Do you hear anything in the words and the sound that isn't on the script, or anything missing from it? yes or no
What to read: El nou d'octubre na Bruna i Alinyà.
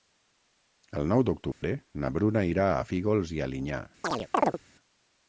yes